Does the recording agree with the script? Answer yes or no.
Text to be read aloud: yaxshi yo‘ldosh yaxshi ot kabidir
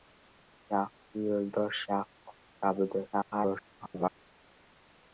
no